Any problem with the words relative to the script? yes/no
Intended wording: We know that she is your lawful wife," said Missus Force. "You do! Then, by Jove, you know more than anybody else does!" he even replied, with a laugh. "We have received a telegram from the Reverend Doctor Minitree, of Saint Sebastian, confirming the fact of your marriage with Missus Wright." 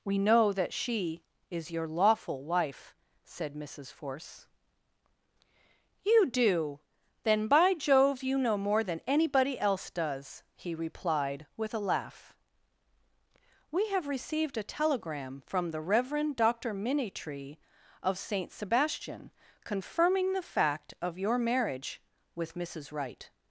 yes